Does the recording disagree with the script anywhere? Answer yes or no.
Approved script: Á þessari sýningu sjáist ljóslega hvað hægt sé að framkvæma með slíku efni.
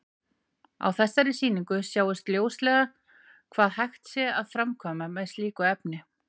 no